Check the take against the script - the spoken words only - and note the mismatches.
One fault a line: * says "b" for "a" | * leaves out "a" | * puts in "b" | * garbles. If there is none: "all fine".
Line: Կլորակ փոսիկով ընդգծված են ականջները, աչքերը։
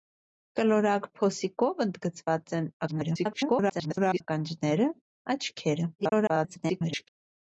* garbles
* garbles